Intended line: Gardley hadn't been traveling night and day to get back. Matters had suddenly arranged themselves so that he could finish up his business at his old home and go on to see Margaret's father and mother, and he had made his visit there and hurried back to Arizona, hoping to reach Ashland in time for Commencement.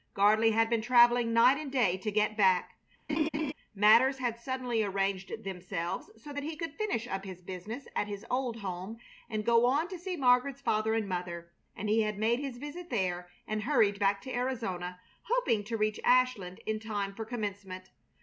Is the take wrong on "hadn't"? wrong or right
wrong